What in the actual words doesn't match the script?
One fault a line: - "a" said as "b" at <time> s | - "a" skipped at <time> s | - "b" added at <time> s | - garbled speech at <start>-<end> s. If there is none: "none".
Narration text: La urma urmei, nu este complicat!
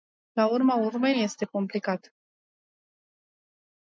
- "nu" skipped at 1.1 s